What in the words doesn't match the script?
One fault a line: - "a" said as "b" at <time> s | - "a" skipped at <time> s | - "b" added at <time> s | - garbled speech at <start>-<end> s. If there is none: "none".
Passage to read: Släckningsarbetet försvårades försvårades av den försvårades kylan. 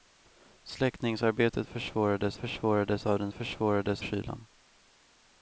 none